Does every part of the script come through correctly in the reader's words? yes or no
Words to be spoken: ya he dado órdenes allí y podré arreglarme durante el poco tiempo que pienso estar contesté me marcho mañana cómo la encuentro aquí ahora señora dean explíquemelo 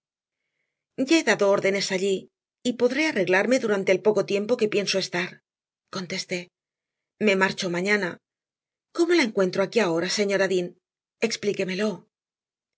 yes